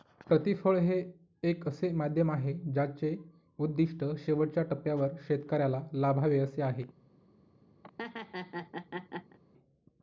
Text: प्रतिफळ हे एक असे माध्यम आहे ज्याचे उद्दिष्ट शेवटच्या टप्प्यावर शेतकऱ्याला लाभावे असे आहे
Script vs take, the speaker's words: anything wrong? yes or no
no